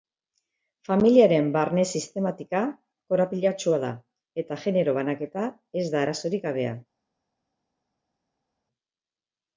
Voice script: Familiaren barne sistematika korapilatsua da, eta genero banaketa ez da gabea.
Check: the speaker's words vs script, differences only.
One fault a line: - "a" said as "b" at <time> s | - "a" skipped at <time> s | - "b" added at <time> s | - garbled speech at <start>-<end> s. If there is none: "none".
- "arazorik" added at 6.0 s